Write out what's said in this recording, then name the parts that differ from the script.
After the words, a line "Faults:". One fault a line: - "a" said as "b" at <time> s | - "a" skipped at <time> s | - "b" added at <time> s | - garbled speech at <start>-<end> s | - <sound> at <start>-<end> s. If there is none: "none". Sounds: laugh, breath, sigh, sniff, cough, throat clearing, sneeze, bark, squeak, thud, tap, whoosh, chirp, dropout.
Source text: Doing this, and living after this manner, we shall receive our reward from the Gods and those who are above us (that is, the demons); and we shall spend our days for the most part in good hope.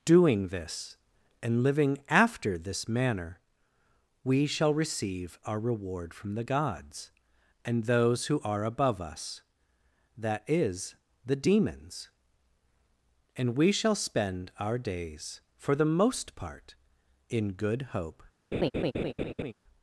Doing this, and living after this manner, we shall receive our reward from the Gods and those who are above us (that is, the demons); and we shall spend our days for the most part in good hope.
Faults:
- laugh at 18.5-19.5 s